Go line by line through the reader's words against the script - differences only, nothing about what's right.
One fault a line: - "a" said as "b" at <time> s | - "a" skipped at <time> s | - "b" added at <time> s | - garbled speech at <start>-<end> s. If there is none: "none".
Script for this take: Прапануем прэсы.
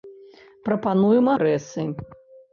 none